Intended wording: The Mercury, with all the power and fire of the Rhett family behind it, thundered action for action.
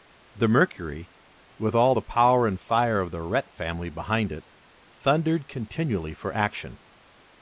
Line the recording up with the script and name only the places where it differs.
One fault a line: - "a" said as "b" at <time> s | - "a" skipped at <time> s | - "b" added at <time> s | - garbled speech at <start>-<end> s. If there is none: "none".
- "action" said as "continually" at 5.5 s